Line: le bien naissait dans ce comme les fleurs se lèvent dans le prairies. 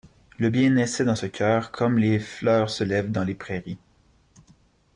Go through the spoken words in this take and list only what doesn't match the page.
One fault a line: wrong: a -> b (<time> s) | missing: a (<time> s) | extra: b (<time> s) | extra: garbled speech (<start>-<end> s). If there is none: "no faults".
extra: cœur (1.2 s)
wrong: le -> les (3.2 s)